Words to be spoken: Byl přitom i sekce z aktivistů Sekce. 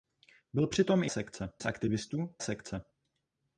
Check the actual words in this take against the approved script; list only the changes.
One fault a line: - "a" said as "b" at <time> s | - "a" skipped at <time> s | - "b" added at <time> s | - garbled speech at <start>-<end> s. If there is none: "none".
none